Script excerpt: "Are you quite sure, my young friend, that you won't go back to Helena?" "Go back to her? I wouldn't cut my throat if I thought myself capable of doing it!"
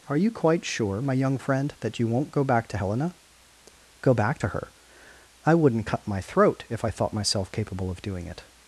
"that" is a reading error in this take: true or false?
false